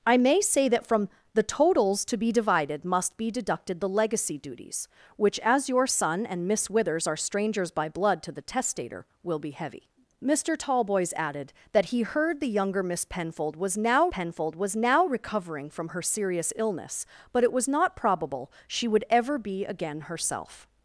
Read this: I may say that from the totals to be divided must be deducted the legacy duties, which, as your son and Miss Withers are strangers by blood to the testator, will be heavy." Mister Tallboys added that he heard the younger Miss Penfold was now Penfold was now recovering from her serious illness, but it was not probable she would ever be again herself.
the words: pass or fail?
pass